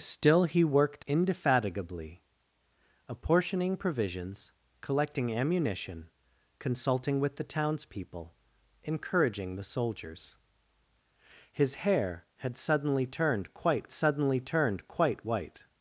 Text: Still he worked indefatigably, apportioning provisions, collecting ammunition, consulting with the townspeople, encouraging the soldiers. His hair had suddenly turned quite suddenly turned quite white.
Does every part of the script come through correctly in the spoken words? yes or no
yes